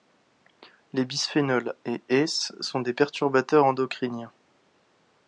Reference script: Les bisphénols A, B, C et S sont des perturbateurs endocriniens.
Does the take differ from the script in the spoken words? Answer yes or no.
yes